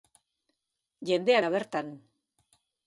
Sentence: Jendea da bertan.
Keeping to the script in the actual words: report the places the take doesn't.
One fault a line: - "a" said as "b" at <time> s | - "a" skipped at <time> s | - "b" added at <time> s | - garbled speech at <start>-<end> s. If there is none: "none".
none